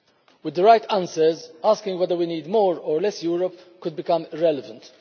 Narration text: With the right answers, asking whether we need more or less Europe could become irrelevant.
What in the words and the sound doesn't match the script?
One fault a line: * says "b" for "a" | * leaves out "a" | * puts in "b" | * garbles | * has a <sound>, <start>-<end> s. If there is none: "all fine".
all fine